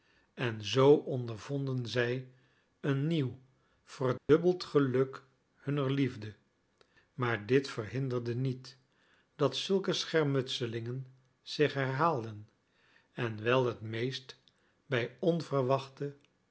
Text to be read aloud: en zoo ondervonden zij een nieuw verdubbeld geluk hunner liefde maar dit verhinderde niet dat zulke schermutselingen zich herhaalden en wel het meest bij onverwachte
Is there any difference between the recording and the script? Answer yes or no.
no